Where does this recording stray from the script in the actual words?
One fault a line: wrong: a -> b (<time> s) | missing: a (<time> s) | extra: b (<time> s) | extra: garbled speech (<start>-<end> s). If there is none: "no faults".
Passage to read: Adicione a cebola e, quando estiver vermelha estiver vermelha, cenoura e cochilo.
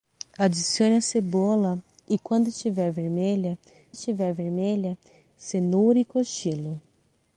no faults